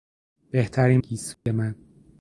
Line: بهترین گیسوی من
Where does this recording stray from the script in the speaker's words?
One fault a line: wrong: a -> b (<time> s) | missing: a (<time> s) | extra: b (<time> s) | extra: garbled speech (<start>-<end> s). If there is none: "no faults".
no faults